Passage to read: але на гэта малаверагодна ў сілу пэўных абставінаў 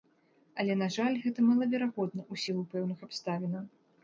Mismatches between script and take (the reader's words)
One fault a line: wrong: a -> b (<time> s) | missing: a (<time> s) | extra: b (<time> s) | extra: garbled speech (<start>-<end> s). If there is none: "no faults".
extra: жаль (0.9 s)